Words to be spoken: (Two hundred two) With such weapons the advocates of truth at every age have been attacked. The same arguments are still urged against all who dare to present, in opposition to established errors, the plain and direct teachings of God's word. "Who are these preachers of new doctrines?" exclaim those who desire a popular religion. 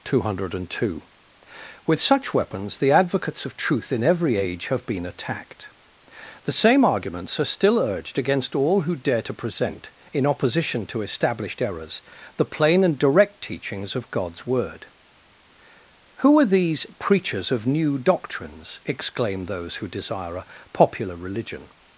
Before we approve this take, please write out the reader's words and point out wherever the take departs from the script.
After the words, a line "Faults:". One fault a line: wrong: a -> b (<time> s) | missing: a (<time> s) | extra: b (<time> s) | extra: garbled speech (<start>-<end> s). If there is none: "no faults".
(Two hundred two) With such weapons the advocates of truth in every age have been attacked. The same arguments are still urged against all who dare to present, in opposition to established errors, the plain and direct teachings of God's word. "Who are these preachers of new doctrines?" exclaim those who desire a popular religion.
Faults:
wrong: at -> in (3.9 s)